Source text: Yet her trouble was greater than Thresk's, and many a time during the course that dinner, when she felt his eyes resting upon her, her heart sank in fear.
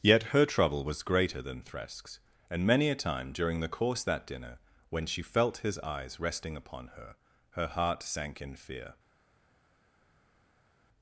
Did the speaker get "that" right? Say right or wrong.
right